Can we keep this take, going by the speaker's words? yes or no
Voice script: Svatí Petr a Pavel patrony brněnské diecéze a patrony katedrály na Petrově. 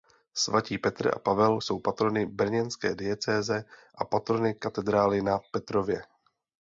no